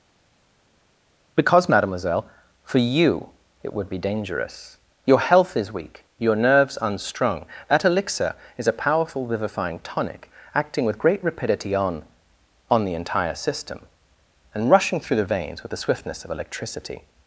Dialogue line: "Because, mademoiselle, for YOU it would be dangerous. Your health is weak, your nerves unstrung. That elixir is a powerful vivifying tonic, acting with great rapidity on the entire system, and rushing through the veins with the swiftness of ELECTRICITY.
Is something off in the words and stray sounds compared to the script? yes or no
yes